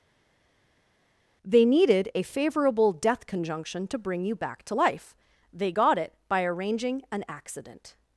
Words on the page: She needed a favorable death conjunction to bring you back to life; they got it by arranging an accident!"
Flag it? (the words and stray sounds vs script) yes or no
yes